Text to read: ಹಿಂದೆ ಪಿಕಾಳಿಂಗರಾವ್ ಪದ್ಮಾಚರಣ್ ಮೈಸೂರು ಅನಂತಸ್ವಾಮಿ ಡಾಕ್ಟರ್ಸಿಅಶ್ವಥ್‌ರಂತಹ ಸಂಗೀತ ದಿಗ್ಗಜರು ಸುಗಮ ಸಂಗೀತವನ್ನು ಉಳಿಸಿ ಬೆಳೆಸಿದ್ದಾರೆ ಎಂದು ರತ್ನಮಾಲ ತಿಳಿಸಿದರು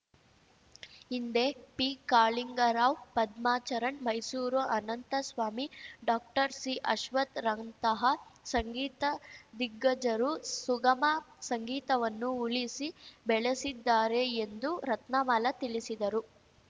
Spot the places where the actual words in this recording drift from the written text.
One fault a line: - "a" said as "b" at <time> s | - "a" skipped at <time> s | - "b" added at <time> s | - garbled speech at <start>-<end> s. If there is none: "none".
none